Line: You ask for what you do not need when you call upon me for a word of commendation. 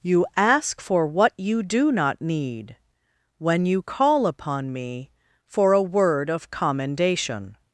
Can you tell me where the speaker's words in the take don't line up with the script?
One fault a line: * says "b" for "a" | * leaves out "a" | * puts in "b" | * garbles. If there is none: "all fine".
all fine